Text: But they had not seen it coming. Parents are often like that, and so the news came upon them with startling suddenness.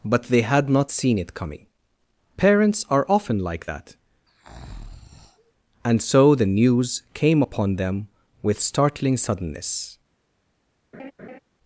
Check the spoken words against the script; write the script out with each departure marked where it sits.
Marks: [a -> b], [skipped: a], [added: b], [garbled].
But they had not seen it coming. Parents are often like that, and so the news came upon them with startling suddenness.